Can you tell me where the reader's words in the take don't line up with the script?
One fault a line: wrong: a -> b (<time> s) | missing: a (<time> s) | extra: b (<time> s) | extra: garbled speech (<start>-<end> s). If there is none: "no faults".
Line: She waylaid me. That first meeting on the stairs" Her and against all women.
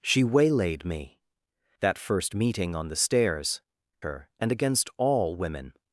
no faults